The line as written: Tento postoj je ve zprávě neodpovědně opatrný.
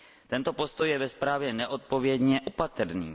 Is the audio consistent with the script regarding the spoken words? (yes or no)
yes